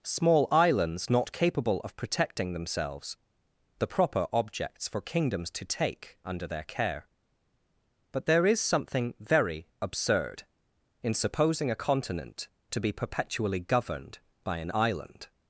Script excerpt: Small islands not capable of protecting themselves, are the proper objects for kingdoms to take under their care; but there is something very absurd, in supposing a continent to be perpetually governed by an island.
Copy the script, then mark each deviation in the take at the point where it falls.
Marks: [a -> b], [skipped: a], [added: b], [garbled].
Small islands not capable of protecting themselves, [skipped: are] the proper objects for kingdoms to take under their care; but there is something very absurd, in supposing a continent to be perpetually governed by an island.